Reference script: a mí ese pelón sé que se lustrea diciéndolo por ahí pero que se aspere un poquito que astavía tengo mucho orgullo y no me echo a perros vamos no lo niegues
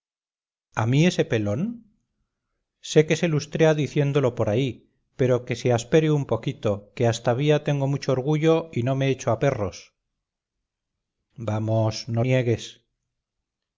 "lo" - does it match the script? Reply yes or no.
no